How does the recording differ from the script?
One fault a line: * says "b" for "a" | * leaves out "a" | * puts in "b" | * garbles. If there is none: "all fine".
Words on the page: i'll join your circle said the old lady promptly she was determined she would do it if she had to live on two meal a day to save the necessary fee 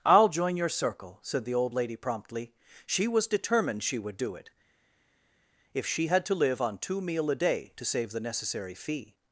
all fine